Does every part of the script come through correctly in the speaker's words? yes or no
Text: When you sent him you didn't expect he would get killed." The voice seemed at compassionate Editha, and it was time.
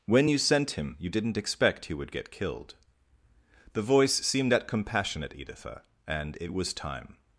yes